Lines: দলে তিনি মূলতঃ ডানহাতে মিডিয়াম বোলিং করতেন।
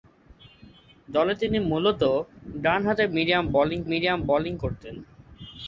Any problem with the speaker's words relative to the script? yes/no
yes